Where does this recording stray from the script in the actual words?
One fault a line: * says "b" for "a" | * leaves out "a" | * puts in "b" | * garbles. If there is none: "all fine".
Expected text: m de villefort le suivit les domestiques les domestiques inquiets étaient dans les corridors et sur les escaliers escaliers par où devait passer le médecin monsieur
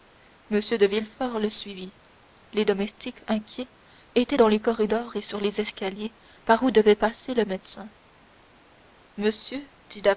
* leaves out "les domestiques"
* leaves out "escaliers"